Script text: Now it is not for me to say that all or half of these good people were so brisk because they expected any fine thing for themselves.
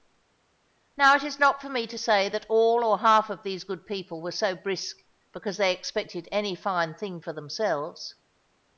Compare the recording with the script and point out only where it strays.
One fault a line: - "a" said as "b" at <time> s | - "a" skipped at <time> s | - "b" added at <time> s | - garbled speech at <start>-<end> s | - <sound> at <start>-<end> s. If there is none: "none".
none